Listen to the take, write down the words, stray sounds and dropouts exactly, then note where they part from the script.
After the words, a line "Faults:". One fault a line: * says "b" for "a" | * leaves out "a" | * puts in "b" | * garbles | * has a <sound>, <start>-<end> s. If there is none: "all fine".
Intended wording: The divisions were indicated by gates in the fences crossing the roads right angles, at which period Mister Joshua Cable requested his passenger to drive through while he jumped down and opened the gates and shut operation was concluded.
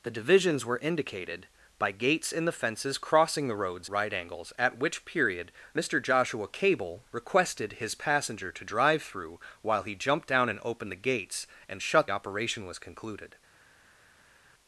The divisions were indicated by gates in the fences crossing the roads right angles, at which period Mister Joshua Cable requested his passenger to drive through while he jumped down and opened the gates and shut operation was concluded.
Faults:
all fine